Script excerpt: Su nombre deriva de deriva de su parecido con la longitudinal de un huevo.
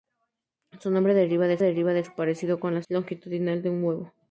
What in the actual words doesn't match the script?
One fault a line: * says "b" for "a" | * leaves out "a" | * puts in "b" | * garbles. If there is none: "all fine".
all fine